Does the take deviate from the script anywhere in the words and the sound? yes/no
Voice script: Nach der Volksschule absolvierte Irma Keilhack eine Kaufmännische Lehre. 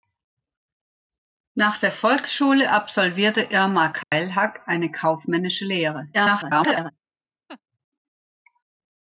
yes